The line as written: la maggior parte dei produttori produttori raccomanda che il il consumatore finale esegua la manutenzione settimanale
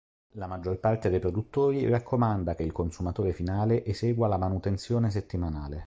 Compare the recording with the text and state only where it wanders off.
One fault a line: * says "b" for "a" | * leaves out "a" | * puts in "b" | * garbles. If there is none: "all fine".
* leaves out "produttori"
* leaves out "il"